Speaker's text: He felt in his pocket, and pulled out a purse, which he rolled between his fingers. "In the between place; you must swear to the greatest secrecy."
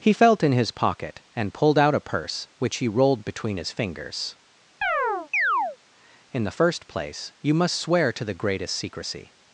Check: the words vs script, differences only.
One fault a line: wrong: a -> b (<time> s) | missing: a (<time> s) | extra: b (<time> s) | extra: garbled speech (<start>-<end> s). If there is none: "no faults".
wrong: between -> first (6.6 s)